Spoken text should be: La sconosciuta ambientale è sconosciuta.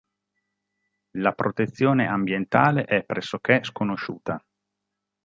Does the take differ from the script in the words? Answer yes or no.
yes